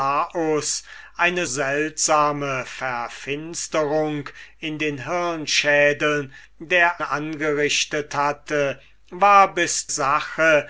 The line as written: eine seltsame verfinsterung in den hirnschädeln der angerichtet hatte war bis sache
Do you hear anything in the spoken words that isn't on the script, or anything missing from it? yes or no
no